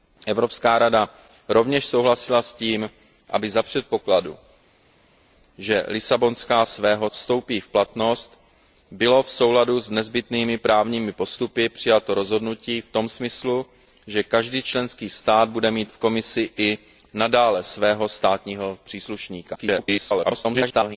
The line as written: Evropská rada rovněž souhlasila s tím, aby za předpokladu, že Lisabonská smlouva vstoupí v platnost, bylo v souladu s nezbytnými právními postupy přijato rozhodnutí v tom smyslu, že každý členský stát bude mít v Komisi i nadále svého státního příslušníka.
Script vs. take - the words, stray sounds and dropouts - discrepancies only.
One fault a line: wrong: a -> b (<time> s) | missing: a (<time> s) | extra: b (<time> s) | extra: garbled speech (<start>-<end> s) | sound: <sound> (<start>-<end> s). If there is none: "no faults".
wrong: smlouva -> svého (6.6 s)
extra: garbled speech (19.5-21.0 s)